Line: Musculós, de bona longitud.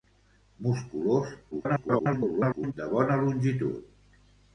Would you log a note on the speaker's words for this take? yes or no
yes